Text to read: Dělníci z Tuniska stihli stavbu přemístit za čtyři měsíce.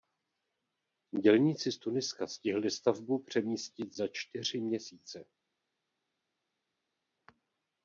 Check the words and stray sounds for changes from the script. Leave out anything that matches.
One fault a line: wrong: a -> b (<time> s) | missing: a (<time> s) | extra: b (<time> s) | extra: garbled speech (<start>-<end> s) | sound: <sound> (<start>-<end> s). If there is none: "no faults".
no faults